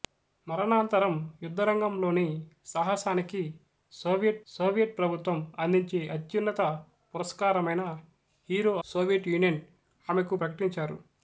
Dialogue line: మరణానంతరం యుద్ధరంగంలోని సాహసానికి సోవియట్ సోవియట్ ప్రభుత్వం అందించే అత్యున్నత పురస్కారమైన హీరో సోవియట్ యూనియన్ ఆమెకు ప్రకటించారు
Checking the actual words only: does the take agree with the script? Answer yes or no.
yes